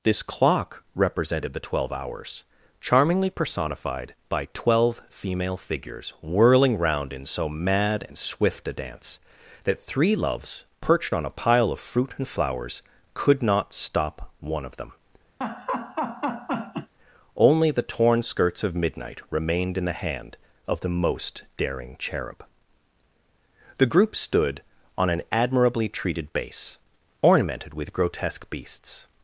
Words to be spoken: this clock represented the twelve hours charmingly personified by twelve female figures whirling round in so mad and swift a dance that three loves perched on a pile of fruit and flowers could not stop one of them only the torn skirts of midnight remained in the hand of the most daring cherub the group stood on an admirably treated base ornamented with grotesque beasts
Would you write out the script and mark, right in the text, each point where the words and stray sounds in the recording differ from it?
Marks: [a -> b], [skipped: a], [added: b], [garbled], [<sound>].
this clock represented the twelve hours charmingly personified by twelve female figures whirling round in so mad and swift a dance that three loves perched on a pile of fruit and flowers could not stop one of them [laugh] only the torn skirts of midnight remained in the hand of the most daring cherub the group stood on an admirably treated base ornamented with grotesque beasts